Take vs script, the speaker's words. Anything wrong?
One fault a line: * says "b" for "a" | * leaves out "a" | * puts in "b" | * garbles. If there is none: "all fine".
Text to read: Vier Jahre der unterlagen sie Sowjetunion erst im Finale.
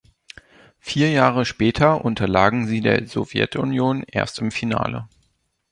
* says "später" for "der"
* puts in "der"